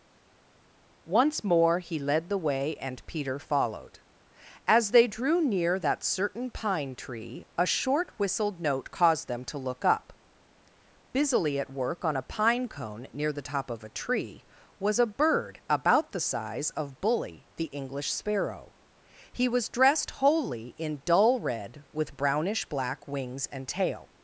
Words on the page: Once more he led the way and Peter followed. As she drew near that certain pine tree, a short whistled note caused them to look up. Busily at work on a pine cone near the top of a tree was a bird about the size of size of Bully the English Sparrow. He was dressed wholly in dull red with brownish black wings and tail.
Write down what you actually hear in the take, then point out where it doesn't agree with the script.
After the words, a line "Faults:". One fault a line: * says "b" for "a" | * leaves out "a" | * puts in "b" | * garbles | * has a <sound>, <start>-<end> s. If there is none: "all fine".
Once more he led the way and Peter followed. As they drew near that certain pine tree, a short whistled note caused them to look up. Busily at work on a pine cone near the top of a tree was a bird about the size of Bully the English Sparrow. He was dressed wholly in dull red with brownish black wings and tail.
Faults:
* says "they" for "she"
* leaves out "size of"